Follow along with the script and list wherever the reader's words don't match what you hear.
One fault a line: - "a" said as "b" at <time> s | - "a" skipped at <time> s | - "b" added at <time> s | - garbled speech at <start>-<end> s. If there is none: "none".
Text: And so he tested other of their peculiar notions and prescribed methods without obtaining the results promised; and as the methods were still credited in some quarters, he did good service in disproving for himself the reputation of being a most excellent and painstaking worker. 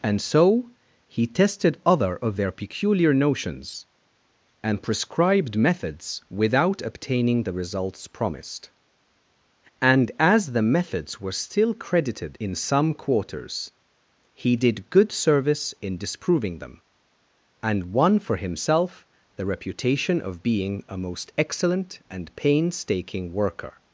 - "them and won" added at 16.6 s